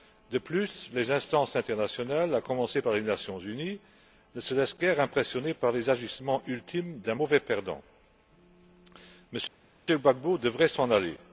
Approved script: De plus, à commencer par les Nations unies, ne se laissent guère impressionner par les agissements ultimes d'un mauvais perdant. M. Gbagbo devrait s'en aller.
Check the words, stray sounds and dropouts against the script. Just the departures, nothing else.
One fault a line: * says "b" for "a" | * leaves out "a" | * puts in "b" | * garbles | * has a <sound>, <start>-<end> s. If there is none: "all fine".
* puts in "les instances internationales"